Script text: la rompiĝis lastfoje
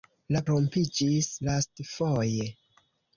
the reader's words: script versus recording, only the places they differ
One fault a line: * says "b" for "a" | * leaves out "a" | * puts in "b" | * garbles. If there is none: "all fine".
all fine